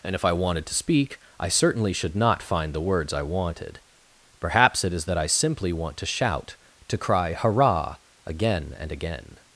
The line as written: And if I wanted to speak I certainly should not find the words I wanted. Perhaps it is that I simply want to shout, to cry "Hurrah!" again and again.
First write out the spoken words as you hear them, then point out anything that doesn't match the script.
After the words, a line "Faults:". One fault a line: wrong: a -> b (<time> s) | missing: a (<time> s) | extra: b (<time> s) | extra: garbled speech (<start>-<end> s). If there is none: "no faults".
And if I wanted to speak I certainly should not find the words I wanted. Perhaps it is that I simply want to shout, to cry "Hurrah!" again and again.
Faults:
no faults